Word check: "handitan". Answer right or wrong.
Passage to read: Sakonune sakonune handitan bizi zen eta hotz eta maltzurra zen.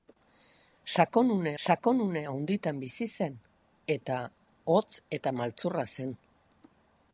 right